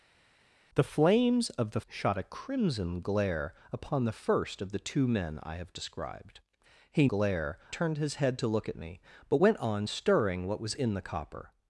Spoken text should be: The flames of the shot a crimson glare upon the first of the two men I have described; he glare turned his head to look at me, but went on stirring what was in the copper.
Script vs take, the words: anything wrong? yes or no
no